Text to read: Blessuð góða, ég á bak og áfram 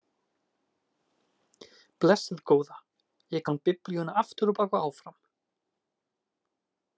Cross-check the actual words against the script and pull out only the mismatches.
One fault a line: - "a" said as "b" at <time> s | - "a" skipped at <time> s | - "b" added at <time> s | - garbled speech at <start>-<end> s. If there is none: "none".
- "kann Biblíuna aftur" added at 3.5 s